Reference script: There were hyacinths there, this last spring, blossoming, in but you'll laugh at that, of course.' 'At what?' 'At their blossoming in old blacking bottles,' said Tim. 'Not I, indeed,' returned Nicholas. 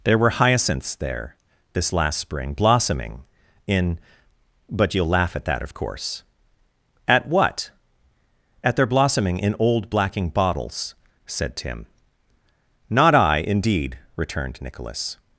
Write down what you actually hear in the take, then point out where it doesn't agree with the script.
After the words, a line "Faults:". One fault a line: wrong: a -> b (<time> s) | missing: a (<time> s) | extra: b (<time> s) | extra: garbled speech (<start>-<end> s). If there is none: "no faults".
There were hyacinths there, this last spring, blossoming, in but you'll laugh at that, of course.' 'At what?' 'At their blossoming in old blacking bottles,' said Tim. 'Not I, indeed,' returned Nicholas.
Faults:
no faults